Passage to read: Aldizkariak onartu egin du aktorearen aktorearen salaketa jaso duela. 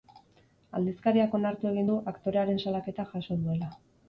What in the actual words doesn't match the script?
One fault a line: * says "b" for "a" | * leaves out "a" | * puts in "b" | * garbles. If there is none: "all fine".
* leaves out "aktorearen"